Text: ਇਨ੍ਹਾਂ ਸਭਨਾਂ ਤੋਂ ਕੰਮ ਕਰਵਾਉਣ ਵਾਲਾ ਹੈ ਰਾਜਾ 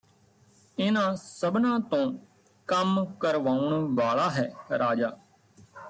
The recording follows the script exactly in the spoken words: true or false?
true